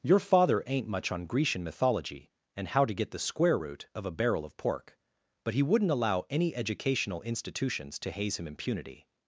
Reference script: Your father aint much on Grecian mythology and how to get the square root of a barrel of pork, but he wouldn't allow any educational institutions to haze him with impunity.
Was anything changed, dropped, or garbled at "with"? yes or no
yes